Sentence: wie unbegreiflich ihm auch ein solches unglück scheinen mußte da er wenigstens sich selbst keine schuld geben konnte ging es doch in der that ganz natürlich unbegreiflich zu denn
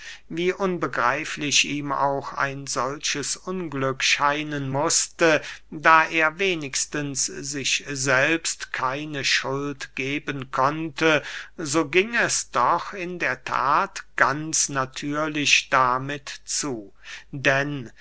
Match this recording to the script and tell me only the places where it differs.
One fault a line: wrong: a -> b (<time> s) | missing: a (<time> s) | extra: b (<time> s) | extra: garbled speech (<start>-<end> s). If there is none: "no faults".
extra: so (11.6 s)
wrong: unbegreiflich -> damit (15.7 s)